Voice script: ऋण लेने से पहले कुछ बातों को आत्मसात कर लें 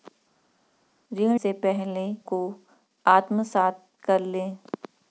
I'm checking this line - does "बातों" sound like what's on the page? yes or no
no